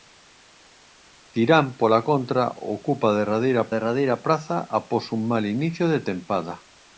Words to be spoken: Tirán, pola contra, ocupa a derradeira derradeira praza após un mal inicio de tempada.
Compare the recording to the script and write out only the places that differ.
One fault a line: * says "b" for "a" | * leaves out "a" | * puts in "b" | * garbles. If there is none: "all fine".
all fine